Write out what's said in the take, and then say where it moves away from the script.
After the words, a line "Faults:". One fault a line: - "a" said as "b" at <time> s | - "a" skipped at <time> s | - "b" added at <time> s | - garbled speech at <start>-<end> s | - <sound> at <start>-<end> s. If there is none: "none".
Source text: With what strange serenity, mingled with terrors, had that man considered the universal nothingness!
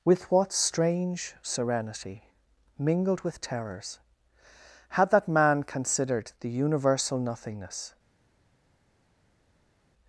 With what strange serenity, mingled with terrors, had that man considered the universal nothingness!
Faults:
none